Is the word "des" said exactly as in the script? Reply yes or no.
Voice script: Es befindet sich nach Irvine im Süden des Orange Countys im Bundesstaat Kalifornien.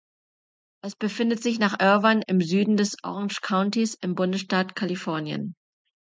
yes